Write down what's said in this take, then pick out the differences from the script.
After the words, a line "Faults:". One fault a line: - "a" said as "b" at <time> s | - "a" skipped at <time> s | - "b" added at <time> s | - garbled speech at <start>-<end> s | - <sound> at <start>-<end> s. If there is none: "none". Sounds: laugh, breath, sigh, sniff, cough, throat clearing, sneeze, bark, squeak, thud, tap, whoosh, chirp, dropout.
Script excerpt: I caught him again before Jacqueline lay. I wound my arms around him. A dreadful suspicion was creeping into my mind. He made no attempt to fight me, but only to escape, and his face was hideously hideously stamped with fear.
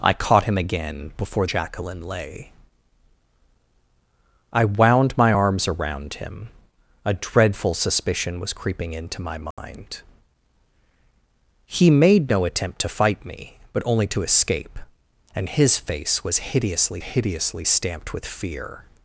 I caught him again before Jacqueline lay. I wound my arms around him. A dreadful suspicion was creeping into my mind. He made no attempt to fight me, but only to escape, and his face was hideously hideously stamped with fear.
Faults:
- dropout at 9.5-9.6 s